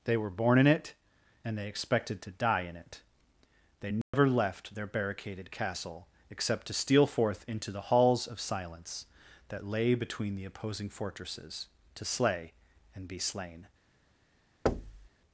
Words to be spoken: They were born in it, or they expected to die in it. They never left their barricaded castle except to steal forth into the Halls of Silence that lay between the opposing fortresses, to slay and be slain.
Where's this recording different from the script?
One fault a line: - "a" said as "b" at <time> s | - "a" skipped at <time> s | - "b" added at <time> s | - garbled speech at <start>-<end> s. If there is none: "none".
- "or" said as "and" at 1.4 s